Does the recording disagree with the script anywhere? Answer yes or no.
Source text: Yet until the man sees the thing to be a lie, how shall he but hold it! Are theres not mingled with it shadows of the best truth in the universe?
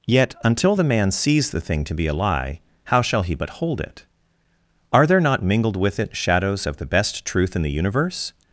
yes